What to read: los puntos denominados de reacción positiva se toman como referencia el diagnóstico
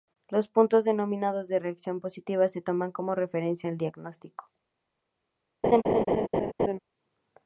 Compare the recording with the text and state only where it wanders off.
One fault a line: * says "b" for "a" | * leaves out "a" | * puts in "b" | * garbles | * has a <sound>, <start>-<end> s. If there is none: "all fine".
* has a laugh, 5.6-6.8 s